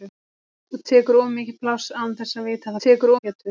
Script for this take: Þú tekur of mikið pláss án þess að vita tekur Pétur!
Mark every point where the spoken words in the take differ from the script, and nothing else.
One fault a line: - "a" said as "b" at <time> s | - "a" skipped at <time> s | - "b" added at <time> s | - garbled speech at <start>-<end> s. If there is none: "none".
none